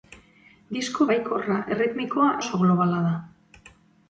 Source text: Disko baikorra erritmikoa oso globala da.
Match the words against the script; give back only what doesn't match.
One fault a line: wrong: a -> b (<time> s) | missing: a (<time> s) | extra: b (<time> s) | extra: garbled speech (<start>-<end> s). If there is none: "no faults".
no faults